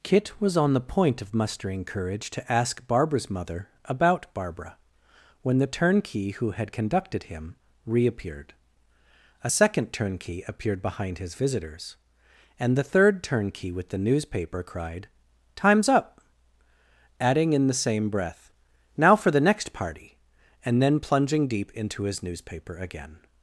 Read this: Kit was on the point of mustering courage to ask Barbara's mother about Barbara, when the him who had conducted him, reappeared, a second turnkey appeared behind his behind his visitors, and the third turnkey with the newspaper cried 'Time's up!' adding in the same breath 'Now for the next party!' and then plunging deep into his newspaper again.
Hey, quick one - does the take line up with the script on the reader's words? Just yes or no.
no